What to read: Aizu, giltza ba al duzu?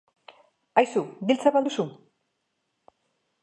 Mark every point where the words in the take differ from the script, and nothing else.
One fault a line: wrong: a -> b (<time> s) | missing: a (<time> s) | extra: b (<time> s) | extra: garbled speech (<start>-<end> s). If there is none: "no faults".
no faults